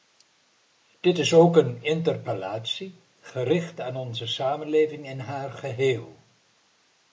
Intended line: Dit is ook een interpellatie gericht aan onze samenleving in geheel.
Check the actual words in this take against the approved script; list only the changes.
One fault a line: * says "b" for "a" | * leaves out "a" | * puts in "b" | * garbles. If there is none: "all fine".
* puts in "haar"